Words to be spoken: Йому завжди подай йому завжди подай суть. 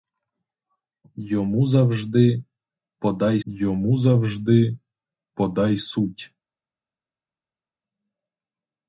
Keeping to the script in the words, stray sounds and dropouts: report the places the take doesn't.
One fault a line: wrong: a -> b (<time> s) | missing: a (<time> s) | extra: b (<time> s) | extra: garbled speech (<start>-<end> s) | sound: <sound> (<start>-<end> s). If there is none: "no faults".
no faults